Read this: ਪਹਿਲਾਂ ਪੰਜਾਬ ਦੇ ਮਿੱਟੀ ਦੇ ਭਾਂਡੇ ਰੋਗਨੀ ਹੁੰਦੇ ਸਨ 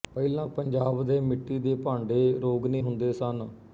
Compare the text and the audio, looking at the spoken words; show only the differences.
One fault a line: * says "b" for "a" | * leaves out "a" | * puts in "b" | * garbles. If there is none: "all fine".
all fine